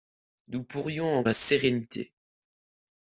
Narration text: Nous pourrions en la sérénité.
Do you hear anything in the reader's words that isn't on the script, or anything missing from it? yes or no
no